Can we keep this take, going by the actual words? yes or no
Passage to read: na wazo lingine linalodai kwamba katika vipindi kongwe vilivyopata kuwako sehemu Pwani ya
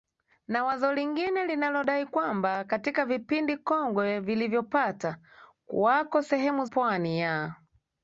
yes